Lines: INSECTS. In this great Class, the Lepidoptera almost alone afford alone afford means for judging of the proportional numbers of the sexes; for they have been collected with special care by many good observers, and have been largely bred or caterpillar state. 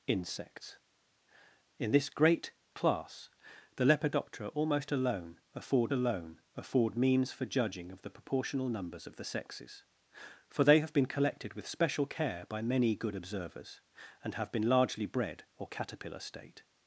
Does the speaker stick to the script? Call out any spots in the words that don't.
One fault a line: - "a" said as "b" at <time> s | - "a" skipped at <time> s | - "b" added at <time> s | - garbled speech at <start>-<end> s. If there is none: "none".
none